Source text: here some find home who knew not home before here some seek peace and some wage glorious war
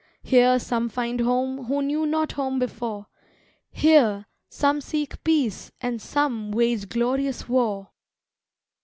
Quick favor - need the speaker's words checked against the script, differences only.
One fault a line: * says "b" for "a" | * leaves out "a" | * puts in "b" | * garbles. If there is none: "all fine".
all fine